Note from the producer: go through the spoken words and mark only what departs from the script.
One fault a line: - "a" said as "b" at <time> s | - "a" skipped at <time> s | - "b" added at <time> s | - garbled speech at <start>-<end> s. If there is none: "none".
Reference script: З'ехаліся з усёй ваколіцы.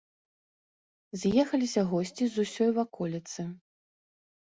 - "госці" added at 1.9 s